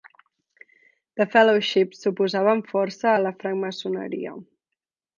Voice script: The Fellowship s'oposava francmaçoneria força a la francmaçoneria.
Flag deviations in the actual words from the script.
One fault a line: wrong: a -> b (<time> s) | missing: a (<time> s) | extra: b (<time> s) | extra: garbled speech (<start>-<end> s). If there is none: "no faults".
wrong: francmaçoneria -> amb (2.6 s)